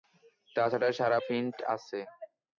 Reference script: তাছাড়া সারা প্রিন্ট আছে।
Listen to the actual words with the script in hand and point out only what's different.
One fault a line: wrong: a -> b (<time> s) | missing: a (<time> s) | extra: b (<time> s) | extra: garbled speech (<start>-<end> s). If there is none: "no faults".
no faults